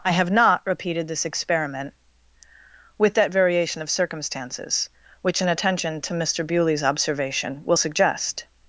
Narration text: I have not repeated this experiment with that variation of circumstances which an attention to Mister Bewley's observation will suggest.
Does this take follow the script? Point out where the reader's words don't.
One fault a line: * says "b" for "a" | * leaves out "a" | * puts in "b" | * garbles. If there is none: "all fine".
all fine